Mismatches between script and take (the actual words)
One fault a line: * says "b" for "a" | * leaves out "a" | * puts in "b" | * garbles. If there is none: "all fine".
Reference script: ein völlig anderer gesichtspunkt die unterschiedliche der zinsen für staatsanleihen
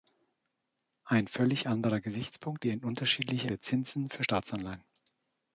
all fine